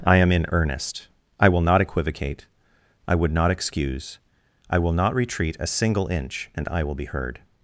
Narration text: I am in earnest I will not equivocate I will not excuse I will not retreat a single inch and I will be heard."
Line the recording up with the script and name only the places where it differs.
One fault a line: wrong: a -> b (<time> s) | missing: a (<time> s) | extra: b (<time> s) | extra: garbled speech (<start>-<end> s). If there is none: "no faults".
wrong: will -> would (3.1 s)